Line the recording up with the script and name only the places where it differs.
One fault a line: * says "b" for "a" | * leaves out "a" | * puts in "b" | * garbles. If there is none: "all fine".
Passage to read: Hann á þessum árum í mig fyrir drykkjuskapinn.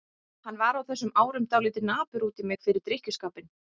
* puts in "var"
* puts in "dálítið napur út"